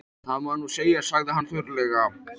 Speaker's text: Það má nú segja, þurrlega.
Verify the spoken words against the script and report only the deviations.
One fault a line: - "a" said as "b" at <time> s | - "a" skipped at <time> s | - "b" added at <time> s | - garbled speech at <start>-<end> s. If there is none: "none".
- "sagði hann" added at 1.1 s